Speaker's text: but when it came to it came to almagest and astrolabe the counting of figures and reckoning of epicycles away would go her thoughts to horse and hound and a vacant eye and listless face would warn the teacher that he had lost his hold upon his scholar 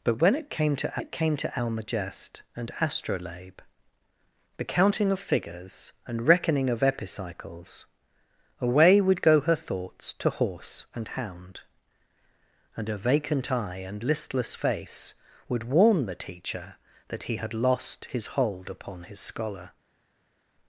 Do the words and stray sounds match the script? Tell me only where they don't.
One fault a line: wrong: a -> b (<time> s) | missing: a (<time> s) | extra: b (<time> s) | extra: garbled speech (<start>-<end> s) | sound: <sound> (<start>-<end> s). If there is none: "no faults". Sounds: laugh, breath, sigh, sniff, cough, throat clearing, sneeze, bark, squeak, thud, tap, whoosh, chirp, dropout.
no faults